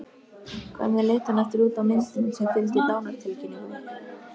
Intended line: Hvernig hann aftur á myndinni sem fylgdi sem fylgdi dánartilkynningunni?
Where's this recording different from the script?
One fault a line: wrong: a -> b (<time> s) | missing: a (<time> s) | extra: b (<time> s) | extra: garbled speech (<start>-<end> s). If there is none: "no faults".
extra: leit (1.1 s)
extra: út (1.7 s)
missing: sem fylgdi (2.9 s)